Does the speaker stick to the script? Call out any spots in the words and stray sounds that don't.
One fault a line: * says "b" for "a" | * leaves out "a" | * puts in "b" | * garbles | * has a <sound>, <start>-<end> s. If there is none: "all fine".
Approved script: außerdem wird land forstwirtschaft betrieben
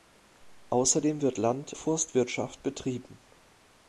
all fine